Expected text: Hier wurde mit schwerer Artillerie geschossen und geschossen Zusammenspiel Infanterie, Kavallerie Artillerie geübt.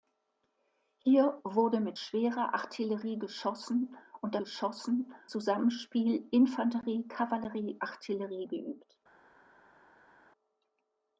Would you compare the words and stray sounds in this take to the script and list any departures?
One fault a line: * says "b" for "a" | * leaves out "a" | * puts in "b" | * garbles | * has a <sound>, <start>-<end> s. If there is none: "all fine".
all fine